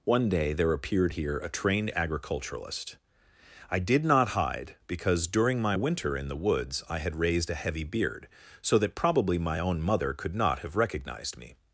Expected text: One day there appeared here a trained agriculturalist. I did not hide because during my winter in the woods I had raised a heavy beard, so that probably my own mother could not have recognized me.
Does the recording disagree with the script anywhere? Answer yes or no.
no